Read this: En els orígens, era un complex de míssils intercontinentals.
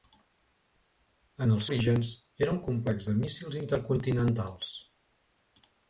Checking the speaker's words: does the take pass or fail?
pass